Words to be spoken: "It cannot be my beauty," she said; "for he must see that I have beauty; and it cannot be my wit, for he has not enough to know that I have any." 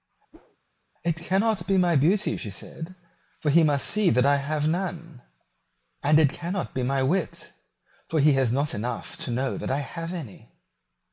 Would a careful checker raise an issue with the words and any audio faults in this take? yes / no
yes